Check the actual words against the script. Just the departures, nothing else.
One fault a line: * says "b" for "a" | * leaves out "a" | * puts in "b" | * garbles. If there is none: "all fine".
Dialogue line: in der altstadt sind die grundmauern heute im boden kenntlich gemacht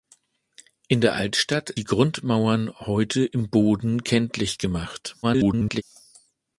* leaves out "sind"
* garbles